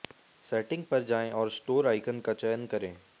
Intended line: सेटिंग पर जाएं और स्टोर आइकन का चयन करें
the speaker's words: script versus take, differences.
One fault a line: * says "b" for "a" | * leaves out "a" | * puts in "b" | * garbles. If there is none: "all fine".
all fine